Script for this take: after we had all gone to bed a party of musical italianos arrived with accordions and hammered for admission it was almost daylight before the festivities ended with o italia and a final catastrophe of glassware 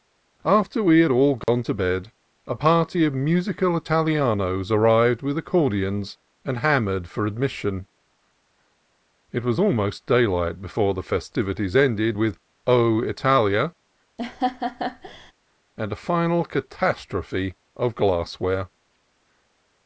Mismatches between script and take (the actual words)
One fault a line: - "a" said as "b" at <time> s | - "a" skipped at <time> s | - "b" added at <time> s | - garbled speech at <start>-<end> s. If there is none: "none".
none